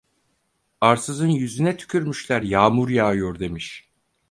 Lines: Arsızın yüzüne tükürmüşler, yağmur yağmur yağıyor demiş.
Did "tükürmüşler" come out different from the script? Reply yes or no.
no